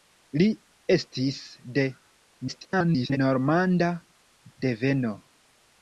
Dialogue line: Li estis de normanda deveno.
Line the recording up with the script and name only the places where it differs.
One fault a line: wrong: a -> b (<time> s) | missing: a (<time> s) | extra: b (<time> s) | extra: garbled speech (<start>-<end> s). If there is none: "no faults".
extra: garbled speech (2.5-3.2 s)